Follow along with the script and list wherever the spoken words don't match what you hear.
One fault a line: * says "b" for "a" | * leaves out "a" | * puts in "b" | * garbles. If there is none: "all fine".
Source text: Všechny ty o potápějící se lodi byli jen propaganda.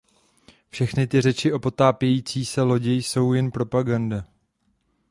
* puts in "řeči"
* says "jsou" for "byli"